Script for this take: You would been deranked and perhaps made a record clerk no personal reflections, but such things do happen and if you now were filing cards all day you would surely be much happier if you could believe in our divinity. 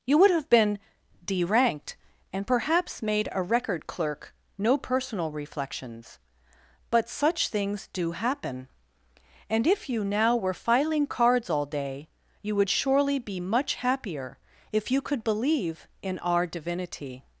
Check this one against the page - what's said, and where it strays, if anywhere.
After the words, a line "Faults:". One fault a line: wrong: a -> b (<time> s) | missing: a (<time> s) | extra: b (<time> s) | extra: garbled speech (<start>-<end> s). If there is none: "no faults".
You would have been deranked and perhaps made a record clerk no personal reflections, but such things do happen and if you now were filing cards all day you would surely be much happier if you could believe in our divinity.
Faults:
extra: have (0.3 s)